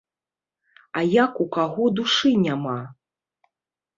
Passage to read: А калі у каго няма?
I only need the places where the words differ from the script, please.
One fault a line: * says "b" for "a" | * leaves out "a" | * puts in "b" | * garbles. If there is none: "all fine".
* says "як" for "калі"
* puts in "душы"